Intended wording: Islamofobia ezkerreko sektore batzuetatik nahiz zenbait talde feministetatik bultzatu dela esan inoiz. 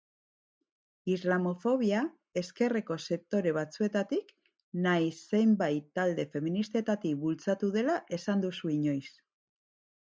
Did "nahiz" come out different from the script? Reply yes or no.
no